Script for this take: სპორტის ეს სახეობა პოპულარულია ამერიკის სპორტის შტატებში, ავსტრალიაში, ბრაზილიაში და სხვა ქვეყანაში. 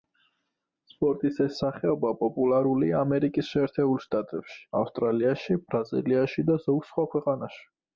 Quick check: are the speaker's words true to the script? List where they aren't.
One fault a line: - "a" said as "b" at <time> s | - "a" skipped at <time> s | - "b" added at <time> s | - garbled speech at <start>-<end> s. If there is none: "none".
- "სპორტის" said as "შეერთებულ" at 3.5 s
- "ზოგ" added at 6.7 s